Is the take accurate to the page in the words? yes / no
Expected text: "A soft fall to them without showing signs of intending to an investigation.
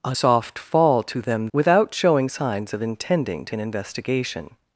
yes